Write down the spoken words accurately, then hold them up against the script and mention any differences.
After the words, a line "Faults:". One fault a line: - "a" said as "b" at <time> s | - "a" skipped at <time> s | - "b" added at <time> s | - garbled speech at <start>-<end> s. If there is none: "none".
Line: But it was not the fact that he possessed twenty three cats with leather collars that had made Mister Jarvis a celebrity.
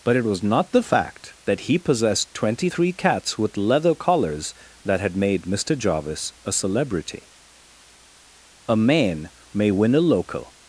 But it was not the fact that he possessed twenty three cats with leather collars that had made Mister Jarvis a celebrity. A man may win a local
Faults:
- "A man may win a local" added at 8.7 s